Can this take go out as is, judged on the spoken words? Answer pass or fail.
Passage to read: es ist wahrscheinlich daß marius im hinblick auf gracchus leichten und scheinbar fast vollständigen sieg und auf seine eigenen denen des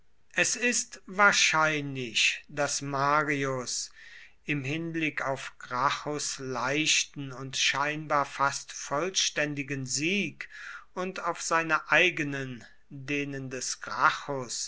pass